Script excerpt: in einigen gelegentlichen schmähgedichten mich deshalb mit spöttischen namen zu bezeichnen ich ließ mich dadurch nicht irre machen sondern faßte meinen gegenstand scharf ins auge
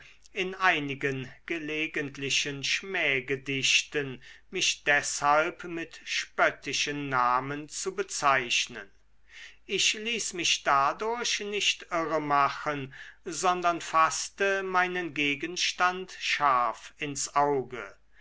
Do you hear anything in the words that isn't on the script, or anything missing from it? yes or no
no